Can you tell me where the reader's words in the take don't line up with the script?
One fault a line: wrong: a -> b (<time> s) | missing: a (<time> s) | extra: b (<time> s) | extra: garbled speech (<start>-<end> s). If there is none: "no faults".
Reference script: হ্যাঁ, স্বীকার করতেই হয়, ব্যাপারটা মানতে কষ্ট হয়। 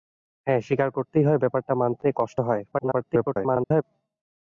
extra: garbled speech (2.7-3.8 s)